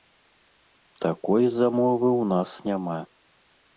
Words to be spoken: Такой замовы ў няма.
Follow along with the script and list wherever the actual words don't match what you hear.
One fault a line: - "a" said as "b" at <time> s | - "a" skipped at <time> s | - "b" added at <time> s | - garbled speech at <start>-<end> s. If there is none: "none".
- "нас" added at 2.3 s